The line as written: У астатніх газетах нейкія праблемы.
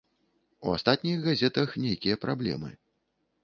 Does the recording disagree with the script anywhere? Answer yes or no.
no